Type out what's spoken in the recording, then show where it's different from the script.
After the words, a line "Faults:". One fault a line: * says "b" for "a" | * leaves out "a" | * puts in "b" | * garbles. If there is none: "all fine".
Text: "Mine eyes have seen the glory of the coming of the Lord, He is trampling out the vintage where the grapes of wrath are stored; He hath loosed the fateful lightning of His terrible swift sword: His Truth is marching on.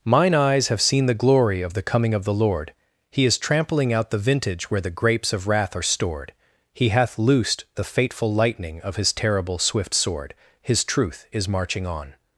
"Mine eyes have seen the glory of the coming of the Lord, He is trampling out the vintage where the grapes of wrath are stored; He hath loosed the fateful lightning of His terrible swift sword: His Truth is marching on.
Faults:
all fine